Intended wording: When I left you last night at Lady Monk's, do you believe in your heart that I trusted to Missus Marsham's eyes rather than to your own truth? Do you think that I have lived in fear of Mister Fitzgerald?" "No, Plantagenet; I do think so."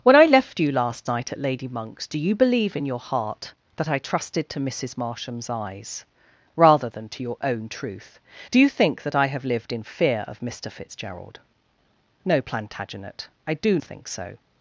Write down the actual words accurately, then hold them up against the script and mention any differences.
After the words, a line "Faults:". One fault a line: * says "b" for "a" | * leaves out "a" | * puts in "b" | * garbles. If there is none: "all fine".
When I left you last night at Lady Monk's, do you believe in your heart that I trusted to Missus Marsham's eyes rather than to your own truth? Do you think that I have lived in fear of Mister Fitzgerald?" "No, Plantagenet; I do think so."
Faults:
all fine